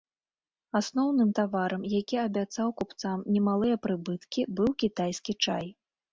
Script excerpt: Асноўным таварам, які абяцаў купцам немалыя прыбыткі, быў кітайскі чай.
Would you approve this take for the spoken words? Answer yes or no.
yes